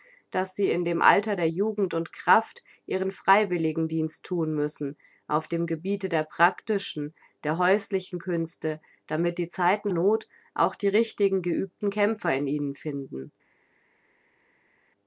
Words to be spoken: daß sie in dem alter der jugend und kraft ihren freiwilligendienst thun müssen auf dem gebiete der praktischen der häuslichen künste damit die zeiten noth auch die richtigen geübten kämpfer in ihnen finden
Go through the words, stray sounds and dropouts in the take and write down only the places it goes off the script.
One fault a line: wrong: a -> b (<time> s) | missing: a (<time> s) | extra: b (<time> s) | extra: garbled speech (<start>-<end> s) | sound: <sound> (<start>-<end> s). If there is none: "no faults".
no faults